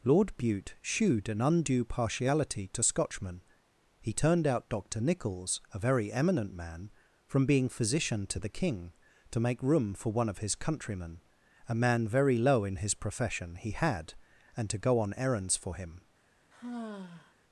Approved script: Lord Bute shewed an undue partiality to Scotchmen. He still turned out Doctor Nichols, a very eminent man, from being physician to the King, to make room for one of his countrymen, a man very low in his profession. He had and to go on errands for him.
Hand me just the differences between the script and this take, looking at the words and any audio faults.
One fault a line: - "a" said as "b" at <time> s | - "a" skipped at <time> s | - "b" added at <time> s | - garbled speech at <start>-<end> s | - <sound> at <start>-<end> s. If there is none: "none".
- "still" skipped at 4.1 s
- sigh at 16.5-17.3 s